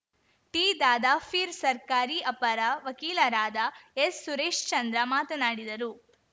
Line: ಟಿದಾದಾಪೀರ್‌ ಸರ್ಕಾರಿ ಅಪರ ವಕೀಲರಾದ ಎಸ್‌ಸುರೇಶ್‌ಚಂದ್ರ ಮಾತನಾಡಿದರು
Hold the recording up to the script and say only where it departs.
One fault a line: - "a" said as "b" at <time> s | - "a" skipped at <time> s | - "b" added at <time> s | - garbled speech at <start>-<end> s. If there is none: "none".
none